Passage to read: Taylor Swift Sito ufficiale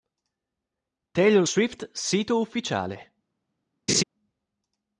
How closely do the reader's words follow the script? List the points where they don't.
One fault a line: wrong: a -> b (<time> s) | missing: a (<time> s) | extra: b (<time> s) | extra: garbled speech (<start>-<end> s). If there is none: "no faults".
no faults